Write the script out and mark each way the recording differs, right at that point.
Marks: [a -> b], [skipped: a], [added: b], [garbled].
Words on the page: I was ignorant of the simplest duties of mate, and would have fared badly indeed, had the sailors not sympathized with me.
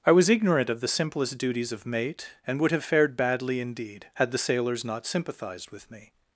I was ignorant of the simplest duties of mate, and would have fared badly indeed, had the sailors not sympathized with me.